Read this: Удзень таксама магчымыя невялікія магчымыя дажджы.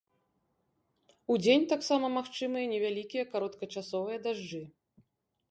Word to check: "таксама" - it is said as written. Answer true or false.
true